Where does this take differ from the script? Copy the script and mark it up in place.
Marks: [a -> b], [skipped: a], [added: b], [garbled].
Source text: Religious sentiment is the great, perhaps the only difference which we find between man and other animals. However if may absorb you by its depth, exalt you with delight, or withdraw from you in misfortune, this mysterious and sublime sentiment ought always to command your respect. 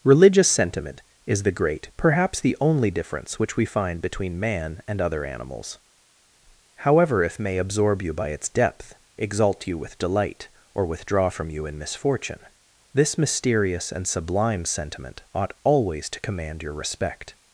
Religious sentiment is the great, perhaps the only difference which we find between man and other animals. However if may absorb you by its depth, exalt you with delight, or withdraw from you in misfortune, this mysterious and sublime sentiment ought always to command your respect.